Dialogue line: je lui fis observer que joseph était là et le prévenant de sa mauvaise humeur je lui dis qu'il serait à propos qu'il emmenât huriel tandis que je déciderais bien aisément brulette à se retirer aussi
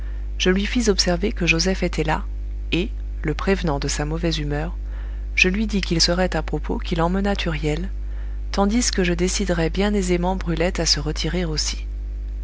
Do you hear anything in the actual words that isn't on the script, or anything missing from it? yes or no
no